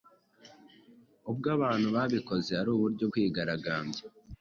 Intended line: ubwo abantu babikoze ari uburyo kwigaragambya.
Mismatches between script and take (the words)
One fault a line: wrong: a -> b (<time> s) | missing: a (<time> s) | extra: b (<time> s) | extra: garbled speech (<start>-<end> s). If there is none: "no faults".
no faults